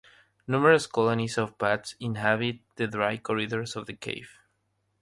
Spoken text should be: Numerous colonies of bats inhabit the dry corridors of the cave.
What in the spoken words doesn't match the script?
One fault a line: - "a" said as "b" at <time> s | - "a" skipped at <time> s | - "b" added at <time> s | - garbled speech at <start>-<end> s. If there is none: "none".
none